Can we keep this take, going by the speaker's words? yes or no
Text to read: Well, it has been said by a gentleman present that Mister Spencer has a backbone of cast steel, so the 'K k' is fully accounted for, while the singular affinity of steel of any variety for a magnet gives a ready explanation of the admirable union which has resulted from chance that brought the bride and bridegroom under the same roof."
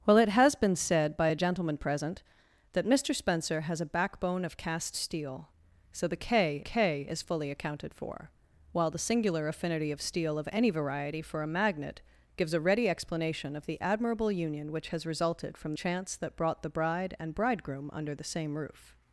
yes